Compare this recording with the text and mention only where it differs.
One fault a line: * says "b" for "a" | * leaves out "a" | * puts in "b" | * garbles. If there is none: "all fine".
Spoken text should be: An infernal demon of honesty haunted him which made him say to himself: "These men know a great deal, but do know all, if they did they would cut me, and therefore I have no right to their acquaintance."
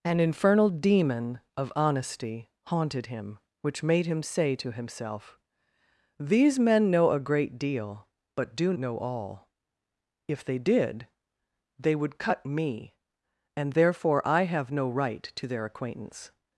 all fine